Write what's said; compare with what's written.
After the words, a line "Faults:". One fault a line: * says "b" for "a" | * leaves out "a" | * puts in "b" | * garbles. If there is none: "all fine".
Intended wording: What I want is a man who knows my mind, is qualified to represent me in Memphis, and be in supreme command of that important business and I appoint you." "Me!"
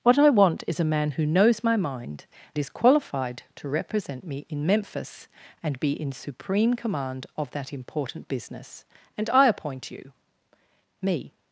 What I want is a man who knows my mind, is qualified to represent me in Memphis, and be in supreme command of that important business and I appoint you." "Me!"
Faults:
all fine